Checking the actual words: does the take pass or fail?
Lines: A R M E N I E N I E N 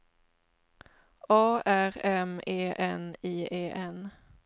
fail